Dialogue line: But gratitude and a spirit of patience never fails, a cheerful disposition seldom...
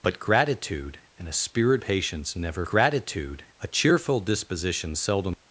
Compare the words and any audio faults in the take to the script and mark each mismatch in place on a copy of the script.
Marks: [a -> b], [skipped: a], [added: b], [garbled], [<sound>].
But gratitude and a spirit [skipped: of] patience never [fails, -> gratitude] a cheerful disposition seldom...